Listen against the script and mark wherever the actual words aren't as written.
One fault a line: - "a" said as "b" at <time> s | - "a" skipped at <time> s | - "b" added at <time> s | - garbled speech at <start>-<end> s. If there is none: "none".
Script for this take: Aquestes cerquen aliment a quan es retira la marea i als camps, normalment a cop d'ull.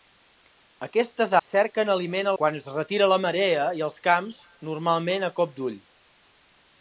none